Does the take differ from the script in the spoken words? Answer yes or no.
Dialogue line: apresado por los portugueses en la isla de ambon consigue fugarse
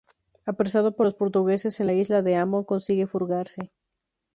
no